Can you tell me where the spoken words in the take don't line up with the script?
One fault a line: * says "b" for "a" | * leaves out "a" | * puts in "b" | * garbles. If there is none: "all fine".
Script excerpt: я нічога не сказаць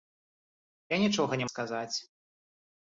all fine